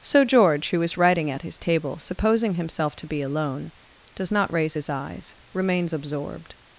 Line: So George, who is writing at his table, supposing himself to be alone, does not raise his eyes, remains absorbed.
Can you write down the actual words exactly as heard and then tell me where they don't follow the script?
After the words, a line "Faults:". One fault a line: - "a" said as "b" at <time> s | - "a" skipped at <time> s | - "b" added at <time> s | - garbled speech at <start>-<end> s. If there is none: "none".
So George, who is writing at his table, supposing himself to be alone, does not raise his eyes, remains absorbed.
Faults:
none